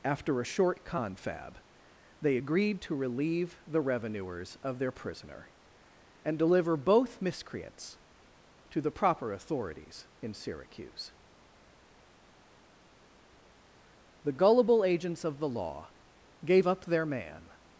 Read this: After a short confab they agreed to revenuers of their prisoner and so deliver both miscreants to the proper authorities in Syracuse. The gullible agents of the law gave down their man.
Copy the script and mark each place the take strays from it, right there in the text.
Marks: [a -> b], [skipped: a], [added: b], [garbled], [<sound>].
After a short confab they agreed to [added: relieve the] revenuers of their prisoner and [skipped: so] deliver both miscreants to the proper authorities in Syracuse. The gullible agents of the law gave [down -> up] their man.